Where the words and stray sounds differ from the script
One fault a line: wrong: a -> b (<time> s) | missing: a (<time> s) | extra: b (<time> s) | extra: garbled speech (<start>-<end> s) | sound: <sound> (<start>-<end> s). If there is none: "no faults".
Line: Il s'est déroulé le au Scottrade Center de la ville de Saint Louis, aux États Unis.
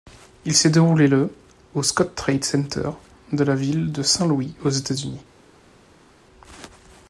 no faults